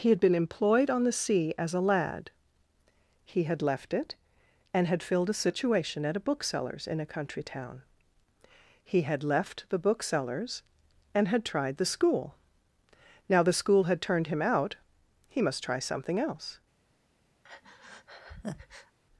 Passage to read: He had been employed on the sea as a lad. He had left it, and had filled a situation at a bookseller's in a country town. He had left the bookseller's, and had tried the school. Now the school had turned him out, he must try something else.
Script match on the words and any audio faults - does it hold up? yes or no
no